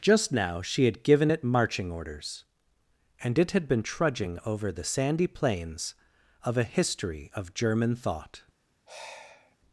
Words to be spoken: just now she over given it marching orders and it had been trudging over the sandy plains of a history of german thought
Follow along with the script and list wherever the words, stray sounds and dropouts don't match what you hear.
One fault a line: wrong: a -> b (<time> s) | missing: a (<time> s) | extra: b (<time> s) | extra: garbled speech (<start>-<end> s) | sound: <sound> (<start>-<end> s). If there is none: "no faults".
wrong: over -> had (0.8 s)
sound: sigh (8.9-9.6 s)